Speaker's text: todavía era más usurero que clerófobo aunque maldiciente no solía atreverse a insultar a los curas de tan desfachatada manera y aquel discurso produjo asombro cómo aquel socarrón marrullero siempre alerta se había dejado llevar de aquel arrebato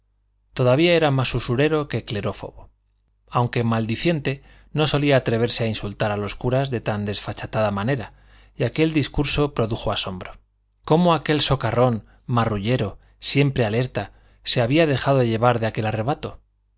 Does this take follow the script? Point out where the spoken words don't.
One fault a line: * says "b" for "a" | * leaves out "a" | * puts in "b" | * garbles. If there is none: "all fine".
all fine